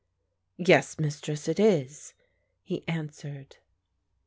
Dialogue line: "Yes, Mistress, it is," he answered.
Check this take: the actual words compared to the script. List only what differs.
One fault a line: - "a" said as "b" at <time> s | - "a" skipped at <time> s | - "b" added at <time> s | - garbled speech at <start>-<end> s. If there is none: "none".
none